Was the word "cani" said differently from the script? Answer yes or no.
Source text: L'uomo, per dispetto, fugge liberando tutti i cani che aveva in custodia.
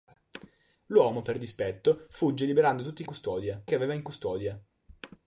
yes